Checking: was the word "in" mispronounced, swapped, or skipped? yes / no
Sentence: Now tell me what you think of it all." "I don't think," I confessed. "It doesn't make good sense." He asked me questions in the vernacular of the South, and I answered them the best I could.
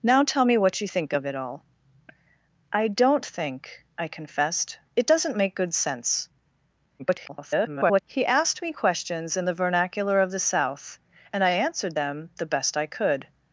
no